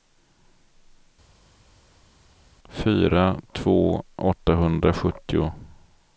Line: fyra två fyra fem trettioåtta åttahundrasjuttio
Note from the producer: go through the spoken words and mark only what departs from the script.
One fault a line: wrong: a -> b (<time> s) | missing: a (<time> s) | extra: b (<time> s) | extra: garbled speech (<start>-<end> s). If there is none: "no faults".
missing: fyra fem trettioåtta (4.0 s)